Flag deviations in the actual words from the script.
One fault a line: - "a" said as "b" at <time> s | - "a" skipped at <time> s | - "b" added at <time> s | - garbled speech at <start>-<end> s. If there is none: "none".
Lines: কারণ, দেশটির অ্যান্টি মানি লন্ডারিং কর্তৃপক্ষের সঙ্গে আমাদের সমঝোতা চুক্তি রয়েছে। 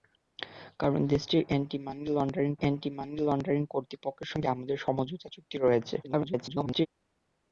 - "অ্যান্টি মানি লন্ডারিং" added at 2.6 s
- garbled speech at 6.0-6.9 s